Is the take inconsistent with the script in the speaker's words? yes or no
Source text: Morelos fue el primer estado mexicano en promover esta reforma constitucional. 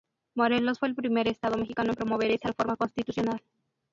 no